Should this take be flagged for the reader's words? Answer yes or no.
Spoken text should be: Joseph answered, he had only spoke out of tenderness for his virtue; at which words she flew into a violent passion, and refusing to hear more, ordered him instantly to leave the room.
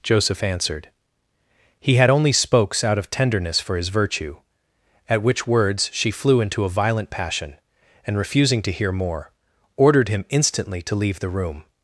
yes